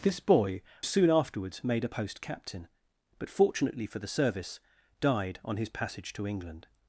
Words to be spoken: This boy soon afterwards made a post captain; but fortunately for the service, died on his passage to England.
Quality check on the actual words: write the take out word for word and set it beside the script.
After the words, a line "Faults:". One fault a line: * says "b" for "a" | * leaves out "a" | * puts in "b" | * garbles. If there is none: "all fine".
This boy soon afterwards made a post captain; but fortunately for the service, died on his passage to England.
Faults:
all fine